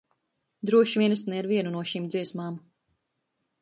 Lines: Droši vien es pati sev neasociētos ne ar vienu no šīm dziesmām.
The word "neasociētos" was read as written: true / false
false